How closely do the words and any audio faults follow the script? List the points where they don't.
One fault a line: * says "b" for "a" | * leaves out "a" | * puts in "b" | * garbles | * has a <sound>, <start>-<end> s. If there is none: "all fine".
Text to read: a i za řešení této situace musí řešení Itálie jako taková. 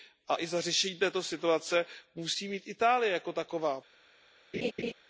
* says "mít" for "řešení"
* has a laugh, 4.5-4.9 s